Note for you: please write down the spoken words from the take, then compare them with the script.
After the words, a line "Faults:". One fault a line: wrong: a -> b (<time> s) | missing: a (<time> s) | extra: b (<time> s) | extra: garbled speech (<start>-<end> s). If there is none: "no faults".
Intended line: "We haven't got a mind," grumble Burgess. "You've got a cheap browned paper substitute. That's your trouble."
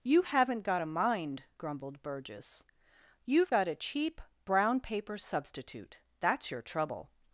"You haven't got a mind," grumbled Burgess. "You've got a cheap brown paper substitute. That's your trouble."
Faults:
wrong: We -> You (0.0 s)
wrong: grumble -> grumbled (1.6 s)
wrong: browned -> brown (4.4 s)